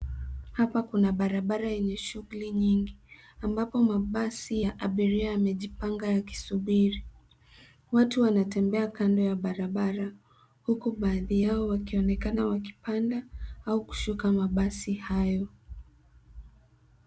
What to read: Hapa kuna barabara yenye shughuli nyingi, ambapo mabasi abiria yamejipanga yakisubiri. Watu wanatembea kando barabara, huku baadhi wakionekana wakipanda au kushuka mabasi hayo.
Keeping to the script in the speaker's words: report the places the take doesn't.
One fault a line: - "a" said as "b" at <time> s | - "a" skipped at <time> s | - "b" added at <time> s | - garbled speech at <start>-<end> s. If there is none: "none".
- "ya" added at 4.6 s
- "ya" added at 9.2 s
- "yao" added at 11.4 s